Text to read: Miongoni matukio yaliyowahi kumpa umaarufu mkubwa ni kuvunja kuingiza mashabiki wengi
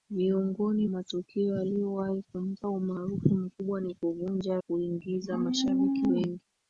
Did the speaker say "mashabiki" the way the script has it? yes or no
yes